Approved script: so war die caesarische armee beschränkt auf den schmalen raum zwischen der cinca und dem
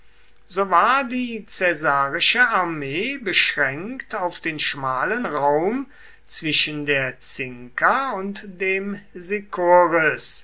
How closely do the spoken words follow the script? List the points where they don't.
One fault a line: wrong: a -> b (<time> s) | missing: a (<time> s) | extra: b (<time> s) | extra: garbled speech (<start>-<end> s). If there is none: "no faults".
no faults